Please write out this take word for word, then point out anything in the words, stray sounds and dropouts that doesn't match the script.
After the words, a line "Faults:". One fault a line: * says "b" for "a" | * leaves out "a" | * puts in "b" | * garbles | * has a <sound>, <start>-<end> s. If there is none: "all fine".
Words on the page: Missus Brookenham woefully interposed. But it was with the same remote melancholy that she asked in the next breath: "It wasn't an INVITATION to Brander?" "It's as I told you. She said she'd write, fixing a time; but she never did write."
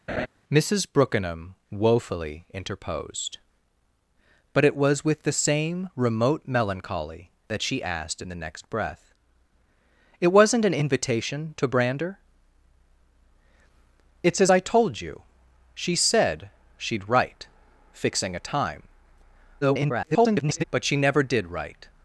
Missus Brookenham woefully interposed. But it was with the same remote melancholy that she asked in the next breath: "It wasn't an INVITATION to Brander?" "It's as I told you. She said she'd write, fixing a time; [garbled] but she never did write."
Faults:
* has a laugh, 0.1-0.3 s
* garbles